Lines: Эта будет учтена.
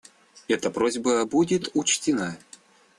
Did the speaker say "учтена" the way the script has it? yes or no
yes